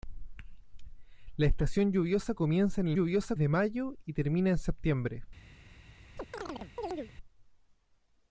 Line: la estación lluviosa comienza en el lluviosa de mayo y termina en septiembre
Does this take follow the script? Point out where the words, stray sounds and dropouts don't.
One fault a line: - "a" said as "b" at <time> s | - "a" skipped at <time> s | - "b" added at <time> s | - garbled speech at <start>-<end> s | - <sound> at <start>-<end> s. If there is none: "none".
- chirp at 6.2-7.1 s